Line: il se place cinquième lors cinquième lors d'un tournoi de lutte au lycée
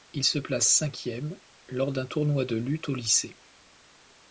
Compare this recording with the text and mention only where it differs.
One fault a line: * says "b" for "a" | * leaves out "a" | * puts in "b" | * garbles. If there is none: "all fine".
* leaves out "cinquième lors"